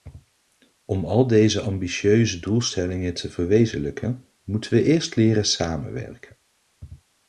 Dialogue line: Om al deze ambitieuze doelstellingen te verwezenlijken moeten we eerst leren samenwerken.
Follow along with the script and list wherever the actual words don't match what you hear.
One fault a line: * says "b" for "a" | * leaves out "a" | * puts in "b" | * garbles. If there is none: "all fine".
all fine